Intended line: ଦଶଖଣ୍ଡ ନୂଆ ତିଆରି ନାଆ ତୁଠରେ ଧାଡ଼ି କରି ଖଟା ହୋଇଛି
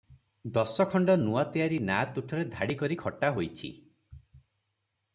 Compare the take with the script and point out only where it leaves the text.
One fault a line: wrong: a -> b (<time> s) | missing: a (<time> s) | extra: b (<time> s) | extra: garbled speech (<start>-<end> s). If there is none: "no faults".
no faults